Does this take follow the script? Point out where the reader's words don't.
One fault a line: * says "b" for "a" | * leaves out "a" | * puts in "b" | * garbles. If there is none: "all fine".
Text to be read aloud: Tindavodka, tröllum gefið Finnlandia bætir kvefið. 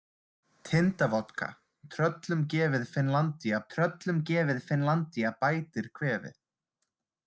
* puts in "tröllum gefið Finnlandia"